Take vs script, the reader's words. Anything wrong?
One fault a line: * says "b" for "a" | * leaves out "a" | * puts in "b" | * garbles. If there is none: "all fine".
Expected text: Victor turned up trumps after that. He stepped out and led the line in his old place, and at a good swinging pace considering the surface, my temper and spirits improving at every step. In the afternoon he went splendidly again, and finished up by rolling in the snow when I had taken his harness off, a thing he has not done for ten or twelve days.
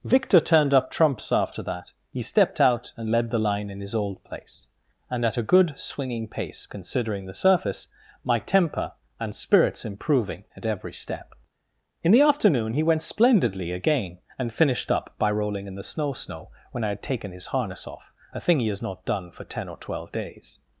* puts in "snow"